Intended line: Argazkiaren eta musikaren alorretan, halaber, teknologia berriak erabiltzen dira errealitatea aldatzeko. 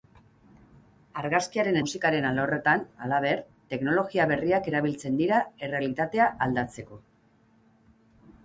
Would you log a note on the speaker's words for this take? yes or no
yes